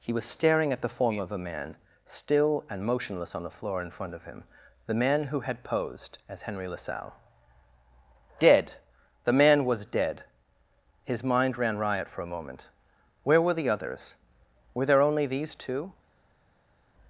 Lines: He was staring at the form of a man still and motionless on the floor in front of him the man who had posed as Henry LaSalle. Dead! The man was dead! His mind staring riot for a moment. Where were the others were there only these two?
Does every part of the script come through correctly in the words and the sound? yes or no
no